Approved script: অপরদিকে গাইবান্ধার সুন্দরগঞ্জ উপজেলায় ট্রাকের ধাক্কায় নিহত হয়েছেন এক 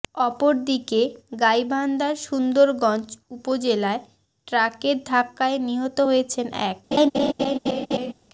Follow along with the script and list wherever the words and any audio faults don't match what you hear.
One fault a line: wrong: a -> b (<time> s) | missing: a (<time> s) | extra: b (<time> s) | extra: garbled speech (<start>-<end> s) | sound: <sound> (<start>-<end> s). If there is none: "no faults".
sound: laugh (6.9-8.1 s)